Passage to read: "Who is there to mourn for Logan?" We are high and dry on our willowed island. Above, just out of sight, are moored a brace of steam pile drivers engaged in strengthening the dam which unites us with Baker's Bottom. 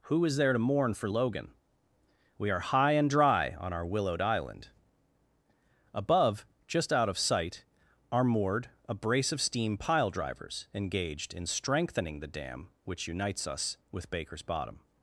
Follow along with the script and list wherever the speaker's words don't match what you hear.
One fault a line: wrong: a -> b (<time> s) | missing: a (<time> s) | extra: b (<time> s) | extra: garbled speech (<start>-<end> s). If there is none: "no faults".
no faults